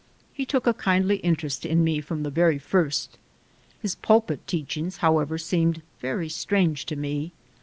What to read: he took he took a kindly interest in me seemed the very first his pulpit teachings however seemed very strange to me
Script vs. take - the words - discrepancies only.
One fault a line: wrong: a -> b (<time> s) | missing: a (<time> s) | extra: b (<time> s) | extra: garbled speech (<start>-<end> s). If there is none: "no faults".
missing: he took (0.7 s)
wrong: seemed -> from (2.0 s)